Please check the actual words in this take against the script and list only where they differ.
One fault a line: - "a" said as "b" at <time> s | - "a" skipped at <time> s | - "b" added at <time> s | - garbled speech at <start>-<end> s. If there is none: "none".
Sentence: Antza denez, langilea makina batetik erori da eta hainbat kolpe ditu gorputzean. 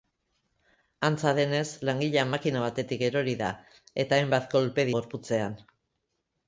- "ditu" skipped at 4.9 s